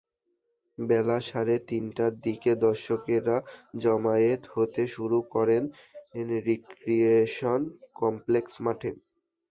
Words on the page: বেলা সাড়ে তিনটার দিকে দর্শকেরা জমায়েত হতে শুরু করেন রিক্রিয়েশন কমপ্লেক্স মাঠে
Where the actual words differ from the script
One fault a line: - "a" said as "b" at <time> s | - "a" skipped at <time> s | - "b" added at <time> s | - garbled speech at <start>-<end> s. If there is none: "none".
none